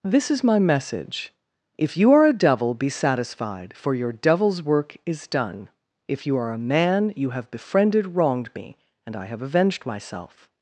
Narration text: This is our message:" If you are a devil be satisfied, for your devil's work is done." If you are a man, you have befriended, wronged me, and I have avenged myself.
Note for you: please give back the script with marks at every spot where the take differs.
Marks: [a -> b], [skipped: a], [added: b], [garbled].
This is [our -> my] message:" If you are a devil be satisfied, for your devil's work is done." If you are a man, you have befriended, wronged me, and I have avenged myself.